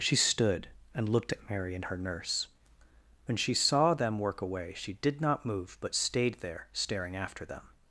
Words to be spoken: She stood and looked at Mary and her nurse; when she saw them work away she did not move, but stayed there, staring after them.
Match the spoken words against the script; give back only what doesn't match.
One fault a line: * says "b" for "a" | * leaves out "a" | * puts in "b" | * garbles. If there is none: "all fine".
all fine